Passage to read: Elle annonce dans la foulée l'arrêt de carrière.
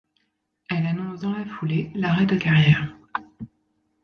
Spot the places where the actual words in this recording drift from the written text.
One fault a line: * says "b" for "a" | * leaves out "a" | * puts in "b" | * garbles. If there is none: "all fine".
all fine